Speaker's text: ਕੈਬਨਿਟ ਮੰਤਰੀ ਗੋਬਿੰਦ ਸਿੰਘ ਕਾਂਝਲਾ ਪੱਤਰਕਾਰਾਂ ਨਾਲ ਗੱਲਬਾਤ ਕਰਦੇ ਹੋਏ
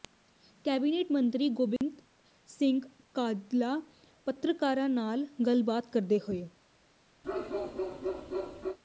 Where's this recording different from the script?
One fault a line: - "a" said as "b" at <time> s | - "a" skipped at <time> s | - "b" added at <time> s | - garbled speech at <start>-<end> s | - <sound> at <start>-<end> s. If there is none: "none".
- dropout at 1.8-1.8 s
- bark at 7.2-8.8 s